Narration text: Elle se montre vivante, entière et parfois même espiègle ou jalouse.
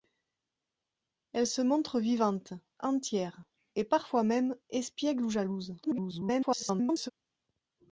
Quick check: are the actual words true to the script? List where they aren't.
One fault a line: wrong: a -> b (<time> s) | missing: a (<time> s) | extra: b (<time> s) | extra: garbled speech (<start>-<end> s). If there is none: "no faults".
extra: garbled speech (5.8-7.1 s)